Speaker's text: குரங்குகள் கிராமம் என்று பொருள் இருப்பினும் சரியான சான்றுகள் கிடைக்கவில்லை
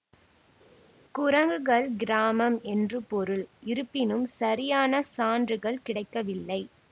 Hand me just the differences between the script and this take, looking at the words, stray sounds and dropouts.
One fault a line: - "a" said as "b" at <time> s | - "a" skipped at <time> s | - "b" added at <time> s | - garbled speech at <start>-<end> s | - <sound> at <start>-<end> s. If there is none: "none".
none